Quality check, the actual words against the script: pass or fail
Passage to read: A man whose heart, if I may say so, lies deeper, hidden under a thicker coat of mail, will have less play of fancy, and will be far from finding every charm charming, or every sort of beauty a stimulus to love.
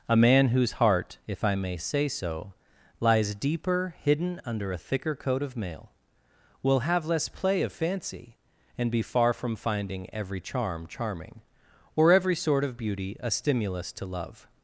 fail